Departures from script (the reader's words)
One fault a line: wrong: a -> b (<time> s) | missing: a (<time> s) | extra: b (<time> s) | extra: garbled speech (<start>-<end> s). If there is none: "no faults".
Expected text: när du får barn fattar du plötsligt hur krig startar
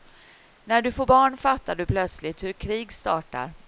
no faults